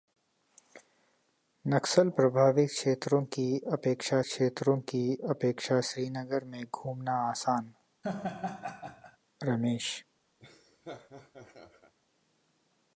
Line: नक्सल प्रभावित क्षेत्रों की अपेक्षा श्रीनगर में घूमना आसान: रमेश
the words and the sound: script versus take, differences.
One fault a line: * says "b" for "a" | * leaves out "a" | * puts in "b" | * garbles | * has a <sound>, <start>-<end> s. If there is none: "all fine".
* puts in "क्षेत्रों की अपेक्षा"
* has a laugh, 8.0-9.2 s
* has a laugh, 10.4-11.9 s